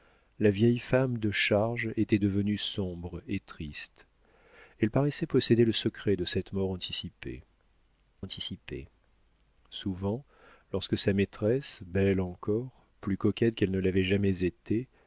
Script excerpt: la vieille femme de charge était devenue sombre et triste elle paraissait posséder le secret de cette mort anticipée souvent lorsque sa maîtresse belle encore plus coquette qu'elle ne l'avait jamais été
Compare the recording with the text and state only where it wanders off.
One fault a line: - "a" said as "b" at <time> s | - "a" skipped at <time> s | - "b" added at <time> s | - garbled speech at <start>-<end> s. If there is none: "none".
- "anticipée" added at 8.2 s